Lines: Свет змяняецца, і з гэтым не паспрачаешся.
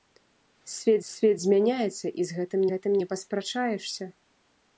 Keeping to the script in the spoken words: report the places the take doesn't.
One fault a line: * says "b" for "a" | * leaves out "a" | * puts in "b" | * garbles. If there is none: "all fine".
* puts in "свет"
* puts in "гэтым"